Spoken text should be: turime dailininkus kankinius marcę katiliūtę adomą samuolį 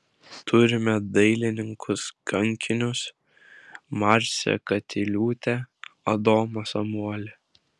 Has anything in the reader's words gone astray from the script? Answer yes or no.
no